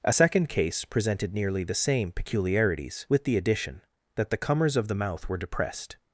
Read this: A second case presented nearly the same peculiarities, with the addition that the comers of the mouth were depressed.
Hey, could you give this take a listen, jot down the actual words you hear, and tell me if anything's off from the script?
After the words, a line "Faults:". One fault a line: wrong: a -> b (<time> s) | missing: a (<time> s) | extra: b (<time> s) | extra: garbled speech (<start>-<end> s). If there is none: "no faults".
A second case presented nearly the same peculiarities, with the addition that the comers of the mouth were depressed.
Faults:
no faults